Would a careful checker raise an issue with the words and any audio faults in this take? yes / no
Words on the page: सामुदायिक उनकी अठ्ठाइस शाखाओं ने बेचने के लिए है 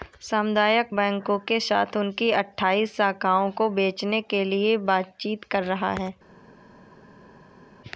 yes